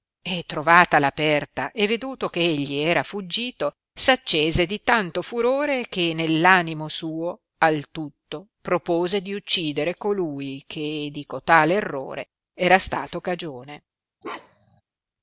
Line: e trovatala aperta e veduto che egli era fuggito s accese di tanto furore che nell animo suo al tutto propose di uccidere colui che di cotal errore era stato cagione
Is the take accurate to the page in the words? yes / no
yes